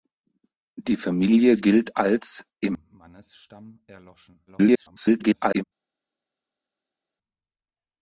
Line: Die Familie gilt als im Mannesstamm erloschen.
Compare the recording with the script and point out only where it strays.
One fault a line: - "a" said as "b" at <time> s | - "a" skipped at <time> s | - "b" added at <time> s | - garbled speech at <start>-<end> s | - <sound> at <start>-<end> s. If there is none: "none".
- garbled speech at 4.5-5.6 s